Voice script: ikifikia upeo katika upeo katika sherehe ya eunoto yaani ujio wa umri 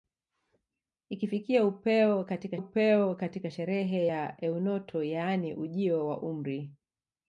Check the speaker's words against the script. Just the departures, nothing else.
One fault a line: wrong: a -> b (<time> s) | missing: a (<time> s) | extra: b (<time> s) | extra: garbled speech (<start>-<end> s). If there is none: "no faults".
no faults